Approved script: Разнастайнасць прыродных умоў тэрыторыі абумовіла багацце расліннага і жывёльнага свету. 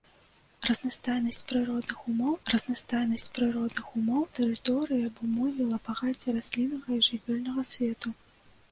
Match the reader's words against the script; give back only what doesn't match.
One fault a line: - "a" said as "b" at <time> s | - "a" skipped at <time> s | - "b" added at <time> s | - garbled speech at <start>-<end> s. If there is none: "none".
- "разнастайнасць прыродных умоў" added at 2.5 s